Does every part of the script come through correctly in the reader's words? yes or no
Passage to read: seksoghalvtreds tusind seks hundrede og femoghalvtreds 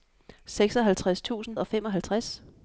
no